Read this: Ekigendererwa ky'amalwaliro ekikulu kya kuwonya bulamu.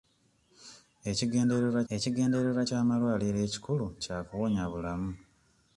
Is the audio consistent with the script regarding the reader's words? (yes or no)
no